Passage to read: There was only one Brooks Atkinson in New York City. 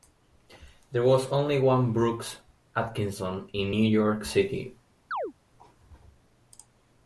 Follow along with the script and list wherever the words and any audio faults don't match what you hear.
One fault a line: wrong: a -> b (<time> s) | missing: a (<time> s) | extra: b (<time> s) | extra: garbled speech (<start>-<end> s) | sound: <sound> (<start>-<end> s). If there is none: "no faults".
sound: chirp (5.1-5.3 s)